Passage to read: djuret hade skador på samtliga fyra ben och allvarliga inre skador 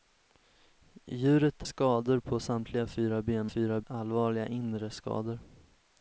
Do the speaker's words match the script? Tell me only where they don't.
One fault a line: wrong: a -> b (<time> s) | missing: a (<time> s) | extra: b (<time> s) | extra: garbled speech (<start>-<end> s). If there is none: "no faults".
missing: hade (1.6 s)
wrong: och -> fyra (3.4 s)